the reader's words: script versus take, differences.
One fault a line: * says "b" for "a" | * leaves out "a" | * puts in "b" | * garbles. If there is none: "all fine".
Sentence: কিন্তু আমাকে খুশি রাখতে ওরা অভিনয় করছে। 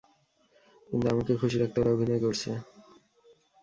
all fine